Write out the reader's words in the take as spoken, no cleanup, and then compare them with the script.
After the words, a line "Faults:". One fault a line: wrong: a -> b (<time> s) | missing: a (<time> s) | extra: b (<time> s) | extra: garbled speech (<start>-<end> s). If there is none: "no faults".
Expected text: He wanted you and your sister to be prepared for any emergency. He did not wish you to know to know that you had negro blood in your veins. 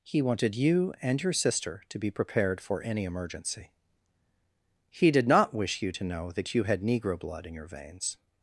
He wanted you and your sister to be prepared for any emergency. He did not wish you to know that you had negro blood in your veins.
Faults:
missing: to know (6.3 s)